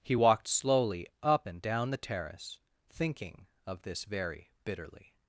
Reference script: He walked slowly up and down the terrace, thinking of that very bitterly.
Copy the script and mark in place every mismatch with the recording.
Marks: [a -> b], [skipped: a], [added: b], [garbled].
He walked slowly up and down the terrace, thinking of [that -> this] very bitterly.